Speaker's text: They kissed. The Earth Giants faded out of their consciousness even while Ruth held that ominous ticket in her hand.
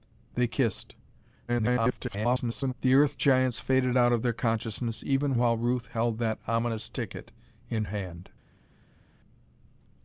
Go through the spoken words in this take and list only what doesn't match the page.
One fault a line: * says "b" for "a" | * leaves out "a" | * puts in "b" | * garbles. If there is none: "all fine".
* garbles
* leaves out "her"